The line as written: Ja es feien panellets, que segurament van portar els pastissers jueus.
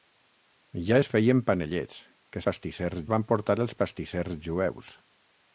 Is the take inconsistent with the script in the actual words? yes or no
yes